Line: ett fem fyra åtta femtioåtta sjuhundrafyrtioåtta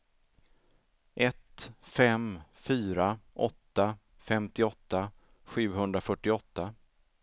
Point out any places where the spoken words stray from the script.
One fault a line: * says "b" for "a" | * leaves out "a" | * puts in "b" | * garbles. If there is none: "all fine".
all fine